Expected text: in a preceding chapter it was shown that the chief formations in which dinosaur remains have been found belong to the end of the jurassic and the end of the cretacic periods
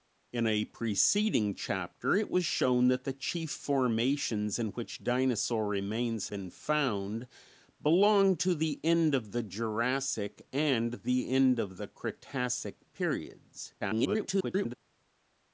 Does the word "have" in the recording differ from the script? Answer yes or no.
yes